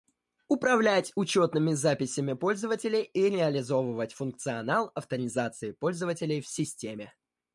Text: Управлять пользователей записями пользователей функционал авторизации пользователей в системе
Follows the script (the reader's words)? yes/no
no